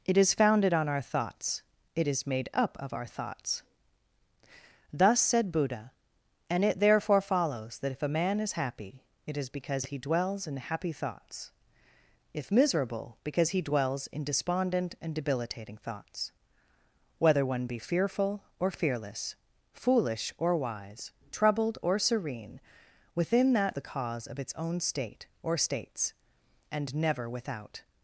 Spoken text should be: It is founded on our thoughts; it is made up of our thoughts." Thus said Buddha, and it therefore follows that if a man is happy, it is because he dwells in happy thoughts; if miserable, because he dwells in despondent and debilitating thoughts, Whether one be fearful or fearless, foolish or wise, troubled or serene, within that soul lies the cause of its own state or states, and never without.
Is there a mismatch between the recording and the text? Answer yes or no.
yes